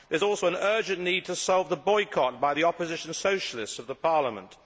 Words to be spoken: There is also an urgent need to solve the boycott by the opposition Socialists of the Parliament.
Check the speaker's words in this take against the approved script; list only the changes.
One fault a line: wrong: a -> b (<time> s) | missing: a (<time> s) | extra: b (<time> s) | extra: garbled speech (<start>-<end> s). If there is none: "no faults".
no faults